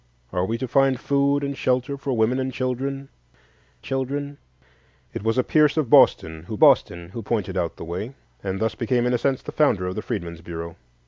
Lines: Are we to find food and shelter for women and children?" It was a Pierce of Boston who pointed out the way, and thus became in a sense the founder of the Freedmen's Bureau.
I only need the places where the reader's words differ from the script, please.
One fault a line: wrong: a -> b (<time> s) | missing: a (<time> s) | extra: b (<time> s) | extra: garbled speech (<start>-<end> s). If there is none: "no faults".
extra: children (3.8 s)
extra: Boston who (6.6 s)